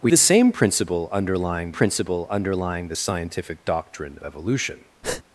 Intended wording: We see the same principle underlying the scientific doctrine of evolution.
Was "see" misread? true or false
true